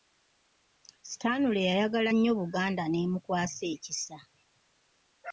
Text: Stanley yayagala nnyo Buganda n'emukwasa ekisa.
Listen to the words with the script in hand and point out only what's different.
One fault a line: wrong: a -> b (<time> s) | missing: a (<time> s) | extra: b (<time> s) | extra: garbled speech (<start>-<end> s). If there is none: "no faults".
no faults